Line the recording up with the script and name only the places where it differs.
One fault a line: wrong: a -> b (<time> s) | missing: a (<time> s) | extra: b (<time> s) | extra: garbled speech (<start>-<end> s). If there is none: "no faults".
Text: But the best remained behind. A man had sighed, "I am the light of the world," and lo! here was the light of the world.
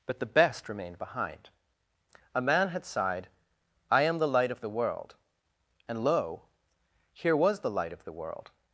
no faults